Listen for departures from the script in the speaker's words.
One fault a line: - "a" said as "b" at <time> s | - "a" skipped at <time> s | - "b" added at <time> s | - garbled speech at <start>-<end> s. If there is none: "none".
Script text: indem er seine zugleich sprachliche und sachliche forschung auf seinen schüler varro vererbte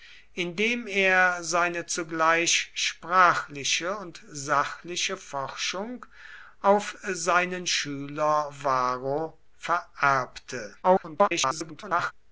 - garbled speech at 10.8-12.1 s